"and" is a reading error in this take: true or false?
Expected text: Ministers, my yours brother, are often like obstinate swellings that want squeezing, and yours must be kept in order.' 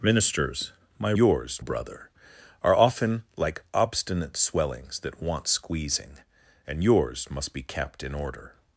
false